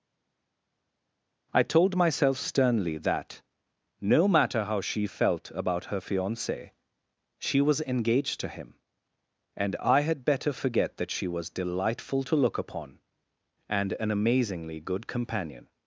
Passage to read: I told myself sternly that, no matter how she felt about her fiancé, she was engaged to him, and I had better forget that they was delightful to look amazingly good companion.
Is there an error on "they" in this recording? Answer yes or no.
yes